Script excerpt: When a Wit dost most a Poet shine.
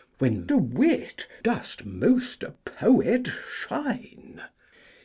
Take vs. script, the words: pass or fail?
pass